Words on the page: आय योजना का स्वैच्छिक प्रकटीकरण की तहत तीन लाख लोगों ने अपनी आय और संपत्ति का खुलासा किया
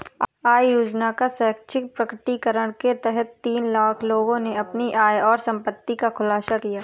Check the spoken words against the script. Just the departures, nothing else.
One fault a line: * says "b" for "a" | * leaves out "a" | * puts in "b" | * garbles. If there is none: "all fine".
* says "के" for "की"